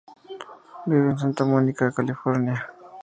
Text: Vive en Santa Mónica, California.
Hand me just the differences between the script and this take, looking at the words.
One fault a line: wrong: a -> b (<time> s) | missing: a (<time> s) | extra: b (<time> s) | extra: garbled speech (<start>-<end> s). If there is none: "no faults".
no faults